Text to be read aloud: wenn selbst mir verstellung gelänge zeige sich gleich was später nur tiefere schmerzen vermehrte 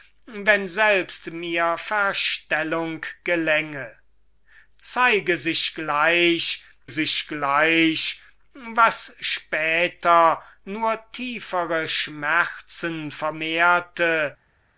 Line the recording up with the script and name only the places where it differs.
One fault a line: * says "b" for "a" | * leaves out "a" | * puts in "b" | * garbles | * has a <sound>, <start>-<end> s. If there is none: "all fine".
* puts in "sich gleich"